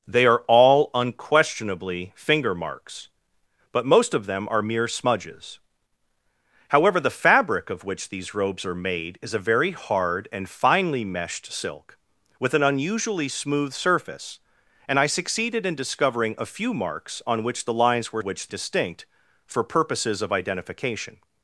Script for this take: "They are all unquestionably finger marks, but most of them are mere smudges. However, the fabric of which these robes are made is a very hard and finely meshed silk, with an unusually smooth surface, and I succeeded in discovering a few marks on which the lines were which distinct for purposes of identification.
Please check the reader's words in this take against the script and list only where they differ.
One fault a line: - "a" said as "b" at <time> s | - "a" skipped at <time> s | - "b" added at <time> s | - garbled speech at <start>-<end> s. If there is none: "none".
none